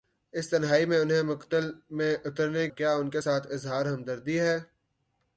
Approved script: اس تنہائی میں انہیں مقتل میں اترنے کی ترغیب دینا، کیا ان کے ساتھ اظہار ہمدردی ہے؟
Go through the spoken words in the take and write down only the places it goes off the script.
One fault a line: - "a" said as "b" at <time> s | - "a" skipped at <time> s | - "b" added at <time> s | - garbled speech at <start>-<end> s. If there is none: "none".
- "کی ترغیب دینا" skipped at 2.7 s